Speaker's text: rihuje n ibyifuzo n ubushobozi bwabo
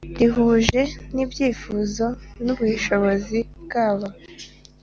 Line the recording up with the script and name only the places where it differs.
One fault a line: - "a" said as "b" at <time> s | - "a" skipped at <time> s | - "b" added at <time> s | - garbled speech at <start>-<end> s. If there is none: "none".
none